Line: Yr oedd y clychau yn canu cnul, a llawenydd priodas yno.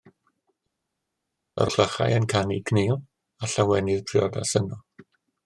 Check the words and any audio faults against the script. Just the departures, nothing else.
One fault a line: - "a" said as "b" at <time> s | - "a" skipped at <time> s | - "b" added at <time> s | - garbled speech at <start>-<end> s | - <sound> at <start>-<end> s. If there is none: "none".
- "oedd" skipped at 1.7 s